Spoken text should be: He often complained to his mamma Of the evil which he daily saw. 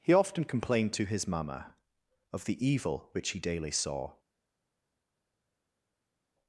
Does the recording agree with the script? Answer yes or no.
yes